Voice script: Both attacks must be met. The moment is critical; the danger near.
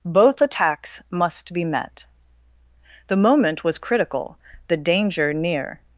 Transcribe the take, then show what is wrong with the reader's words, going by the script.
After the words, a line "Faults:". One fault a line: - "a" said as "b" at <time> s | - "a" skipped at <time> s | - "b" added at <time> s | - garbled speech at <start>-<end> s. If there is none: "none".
Both attacks must be met. The moment was critical; the danger near.
Faults:
- "is" said as "was" at 3.6 s